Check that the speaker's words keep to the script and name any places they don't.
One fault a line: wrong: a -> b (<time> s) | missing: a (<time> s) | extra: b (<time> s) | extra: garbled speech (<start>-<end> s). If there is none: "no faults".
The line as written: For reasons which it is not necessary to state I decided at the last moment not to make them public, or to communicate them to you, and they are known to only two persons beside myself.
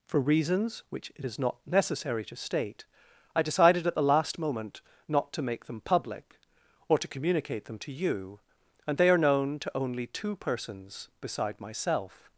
no faults